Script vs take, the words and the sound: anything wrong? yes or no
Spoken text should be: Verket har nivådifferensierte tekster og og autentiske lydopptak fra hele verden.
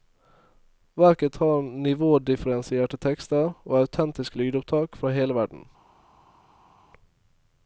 yes